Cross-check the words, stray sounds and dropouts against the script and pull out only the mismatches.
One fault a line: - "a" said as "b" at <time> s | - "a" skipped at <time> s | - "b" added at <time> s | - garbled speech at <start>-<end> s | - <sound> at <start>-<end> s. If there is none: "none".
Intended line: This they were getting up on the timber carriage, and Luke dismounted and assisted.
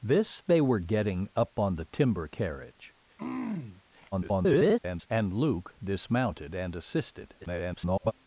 - throat clearing at 3.2-3.8 s
- garbled speech at 4.1-5.1 s
- garbled speech at 7.4-8.1 s